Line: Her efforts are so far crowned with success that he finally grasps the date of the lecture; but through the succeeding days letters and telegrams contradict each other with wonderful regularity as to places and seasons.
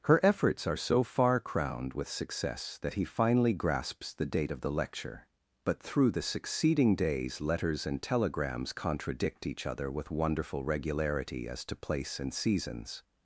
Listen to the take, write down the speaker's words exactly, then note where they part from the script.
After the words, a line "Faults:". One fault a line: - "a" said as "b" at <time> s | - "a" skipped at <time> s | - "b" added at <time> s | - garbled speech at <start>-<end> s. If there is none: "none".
Her efforts are so far crowned with success that he finally grasps the date of the lecture; but through the succeeding days letters and telegrams contradict each other with wonderful regularity as to place and seasons.
Faults:
- "places" said as "place" at 11.8 s